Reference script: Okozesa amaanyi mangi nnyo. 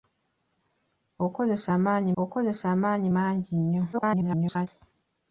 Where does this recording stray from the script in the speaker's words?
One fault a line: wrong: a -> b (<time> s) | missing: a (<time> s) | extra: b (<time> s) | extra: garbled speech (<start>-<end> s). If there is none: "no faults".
extra: okozesa amaanyi (2.2 s)
extra: garbled speech (3.9-4.7 s)